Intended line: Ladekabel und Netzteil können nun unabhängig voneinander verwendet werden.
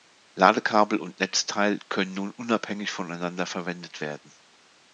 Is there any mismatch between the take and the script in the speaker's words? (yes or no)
no